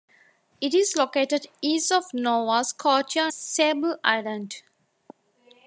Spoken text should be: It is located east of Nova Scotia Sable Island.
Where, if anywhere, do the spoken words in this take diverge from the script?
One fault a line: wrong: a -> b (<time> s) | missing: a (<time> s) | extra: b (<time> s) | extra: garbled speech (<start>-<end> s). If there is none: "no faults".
no faults